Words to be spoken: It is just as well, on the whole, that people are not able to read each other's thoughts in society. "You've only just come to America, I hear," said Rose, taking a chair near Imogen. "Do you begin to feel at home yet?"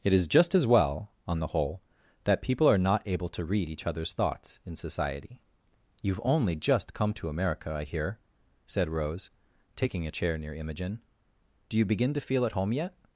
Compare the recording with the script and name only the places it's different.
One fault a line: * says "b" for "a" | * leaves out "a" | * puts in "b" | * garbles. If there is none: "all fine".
all fine